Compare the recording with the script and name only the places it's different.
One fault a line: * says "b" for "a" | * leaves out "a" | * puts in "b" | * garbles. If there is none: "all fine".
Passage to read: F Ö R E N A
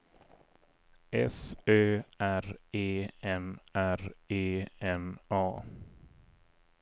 * puts in "R E N"